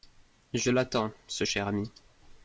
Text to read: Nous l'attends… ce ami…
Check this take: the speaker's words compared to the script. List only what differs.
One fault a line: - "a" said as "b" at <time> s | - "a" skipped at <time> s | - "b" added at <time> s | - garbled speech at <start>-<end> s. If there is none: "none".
- "Nous" said as "Je" at 0.6 s
- "cher" added at 1.4 s